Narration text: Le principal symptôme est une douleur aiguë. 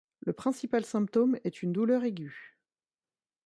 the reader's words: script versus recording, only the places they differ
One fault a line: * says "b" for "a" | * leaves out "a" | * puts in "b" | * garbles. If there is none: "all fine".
all fine